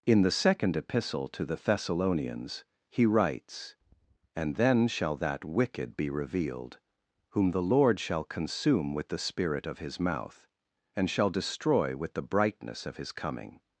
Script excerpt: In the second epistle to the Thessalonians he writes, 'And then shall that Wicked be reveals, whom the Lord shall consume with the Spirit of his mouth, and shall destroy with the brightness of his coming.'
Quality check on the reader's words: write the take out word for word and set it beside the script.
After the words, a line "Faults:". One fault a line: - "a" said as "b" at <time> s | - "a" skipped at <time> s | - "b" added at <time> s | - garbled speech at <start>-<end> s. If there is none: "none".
In the second epistle to the Thessalonians he writes, 'And then shall that Wicked be revealed, whom the Lord shall consume with the Spirit of his mouth, and shall destroy with the brightness of his coming.'
Faults:
- "reveals" said as "revealed" at 6.1 s